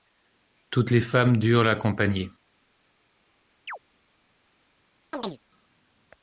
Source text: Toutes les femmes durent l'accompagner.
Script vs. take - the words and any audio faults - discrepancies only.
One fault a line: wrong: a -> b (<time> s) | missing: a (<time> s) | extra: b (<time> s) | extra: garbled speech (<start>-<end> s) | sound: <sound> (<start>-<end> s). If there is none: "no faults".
sound: chirp (3.7-3.8 s)
sound: chirp (5.1-5.4 s)